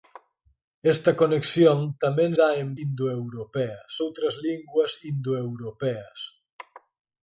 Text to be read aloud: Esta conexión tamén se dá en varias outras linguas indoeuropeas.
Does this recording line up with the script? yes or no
no